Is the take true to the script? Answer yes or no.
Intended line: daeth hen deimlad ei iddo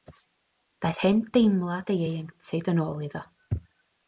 no